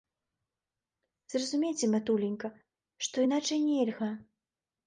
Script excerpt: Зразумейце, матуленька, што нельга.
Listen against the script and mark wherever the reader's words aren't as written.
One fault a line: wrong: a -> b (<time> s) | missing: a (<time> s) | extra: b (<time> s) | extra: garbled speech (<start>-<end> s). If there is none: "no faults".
extra: іначай (3.3 s)